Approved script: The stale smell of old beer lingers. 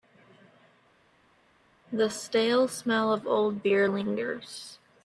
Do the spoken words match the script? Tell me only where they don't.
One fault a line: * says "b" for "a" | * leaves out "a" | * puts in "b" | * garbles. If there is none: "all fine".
all fine